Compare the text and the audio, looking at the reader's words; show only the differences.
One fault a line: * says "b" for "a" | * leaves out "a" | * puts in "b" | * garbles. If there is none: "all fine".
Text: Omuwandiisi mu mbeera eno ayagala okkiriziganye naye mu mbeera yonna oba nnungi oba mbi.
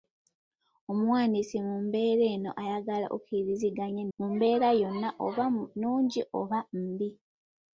* leaves out "naye"